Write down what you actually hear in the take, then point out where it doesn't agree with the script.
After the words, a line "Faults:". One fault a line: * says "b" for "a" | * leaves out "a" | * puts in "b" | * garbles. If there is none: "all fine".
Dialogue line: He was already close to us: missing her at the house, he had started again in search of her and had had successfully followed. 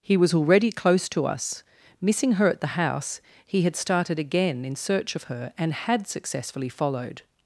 He was already close to us: missing her at the house, he had started again in search of her and had successfully followed.
Faults:
* leaves out "had"